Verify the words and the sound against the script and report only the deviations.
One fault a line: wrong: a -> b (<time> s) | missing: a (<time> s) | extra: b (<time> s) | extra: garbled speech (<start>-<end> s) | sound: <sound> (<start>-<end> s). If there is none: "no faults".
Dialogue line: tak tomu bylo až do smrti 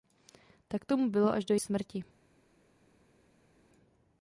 no faults